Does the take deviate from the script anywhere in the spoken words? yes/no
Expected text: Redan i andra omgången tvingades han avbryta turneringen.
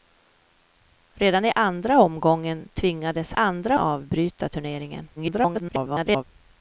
yes